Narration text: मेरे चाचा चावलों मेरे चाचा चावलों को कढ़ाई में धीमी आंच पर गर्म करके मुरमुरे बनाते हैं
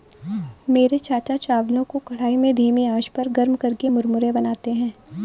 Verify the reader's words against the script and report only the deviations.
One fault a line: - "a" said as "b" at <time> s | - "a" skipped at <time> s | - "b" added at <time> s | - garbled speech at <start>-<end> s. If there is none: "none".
- "मेरे चाचा चावलों" skipped at 1.8 s